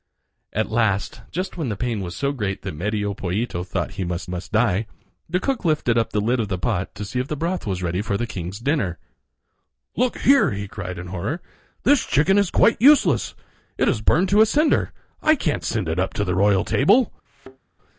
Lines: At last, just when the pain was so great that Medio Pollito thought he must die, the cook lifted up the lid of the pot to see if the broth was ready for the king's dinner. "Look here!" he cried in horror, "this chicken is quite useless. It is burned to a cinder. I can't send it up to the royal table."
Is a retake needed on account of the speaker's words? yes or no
yes